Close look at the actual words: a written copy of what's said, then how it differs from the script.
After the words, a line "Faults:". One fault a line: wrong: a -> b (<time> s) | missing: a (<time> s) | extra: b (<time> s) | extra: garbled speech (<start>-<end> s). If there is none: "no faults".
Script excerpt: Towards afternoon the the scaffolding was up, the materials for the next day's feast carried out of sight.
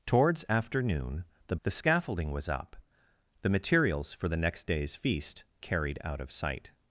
Towards afternoon the the scaffolding was up, the materials for the next day's feast carried out of sight.
Faults:
no faults